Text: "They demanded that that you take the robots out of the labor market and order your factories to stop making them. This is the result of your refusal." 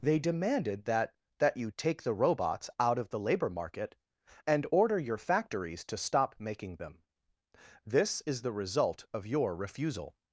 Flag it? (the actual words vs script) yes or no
no